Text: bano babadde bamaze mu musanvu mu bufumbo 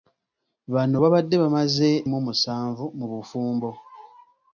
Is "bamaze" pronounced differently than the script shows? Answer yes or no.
no